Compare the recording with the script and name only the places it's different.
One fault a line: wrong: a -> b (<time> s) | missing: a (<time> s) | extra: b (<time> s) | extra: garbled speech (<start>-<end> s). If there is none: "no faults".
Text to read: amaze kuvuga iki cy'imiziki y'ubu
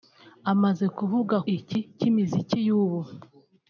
no faults